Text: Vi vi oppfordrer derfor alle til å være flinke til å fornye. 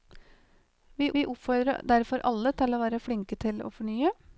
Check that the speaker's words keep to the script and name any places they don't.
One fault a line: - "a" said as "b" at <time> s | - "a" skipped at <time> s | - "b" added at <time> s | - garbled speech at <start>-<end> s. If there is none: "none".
none